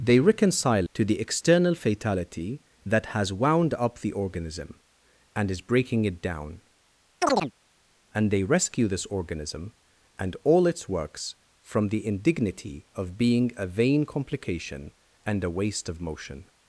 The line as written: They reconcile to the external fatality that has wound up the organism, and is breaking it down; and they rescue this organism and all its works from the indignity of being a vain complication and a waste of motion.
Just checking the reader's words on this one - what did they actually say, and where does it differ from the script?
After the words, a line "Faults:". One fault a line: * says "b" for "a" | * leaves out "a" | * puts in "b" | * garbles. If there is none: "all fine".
They reconcile to the external fatality that has wound up the organism, and is breaking it down; and they rescue this organism and all its works from the indignity of being a vain complication and a waste of motion.
Faults:
all fine